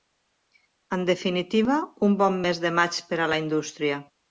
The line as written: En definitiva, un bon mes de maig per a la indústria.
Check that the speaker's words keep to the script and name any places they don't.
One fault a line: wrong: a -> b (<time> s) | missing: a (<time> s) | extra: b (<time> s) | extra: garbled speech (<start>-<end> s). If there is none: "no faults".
no faults